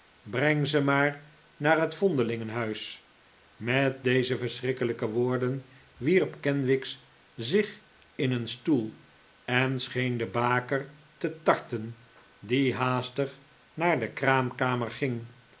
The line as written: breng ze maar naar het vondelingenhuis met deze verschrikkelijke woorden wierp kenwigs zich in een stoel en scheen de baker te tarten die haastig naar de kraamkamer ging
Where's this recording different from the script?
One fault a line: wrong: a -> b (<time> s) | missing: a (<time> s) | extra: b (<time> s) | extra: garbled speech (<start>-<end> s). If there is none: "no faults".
no faults